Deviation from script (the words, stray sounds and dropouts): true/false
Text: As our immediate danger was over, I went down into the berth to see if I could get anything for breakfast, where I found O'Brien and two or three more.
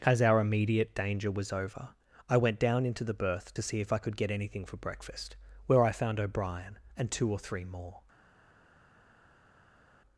false